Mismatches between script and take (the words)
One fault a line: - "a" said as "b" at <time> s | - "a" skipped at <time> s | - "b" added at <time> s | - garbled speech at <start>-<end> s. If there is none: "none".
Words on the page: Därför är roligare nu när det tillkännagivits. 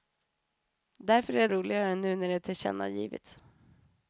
none